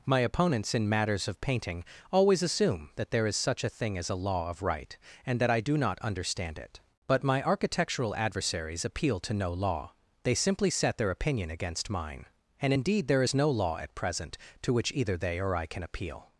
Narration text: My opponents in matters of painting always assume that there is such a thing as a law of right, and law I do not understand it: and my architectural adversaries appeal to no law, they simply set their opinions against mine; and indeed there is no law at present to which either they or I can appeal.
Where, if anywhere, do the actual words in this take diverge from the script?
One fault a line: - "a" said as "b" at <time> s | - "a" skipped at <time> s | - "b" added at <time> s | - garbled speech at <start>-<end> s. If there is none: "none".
- "law" said as "that" at 5.4 s
- "and" said as "but" at 7.0 s
- "opinions" said as "opinion" at 11.1 s